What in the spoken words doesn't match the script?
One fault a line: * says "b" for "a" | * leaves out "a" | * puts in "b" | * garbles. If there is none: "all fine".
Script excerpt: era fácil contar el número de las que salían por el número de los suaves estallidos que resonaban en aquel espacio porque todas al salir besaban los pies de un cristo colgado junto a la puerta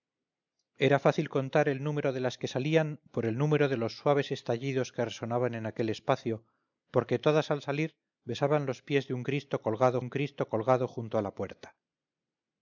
* puts in "un cristo colgado"